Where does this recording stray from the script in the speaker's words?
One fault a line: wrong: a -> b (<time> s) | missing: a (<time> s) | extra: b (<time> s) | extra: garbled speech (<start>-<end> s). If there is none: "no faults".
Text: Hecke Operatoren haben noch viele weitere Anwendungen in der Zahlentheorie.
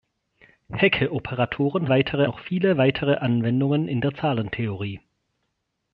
wrong: haben -> weitere (1.9 s)